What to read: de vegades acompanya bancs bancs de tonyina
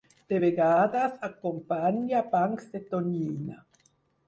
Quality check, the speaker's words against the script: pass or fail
fail